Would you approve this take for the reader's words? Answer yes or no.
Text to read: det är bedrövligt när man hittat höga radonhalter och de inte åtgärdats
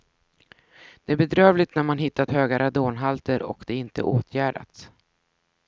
yes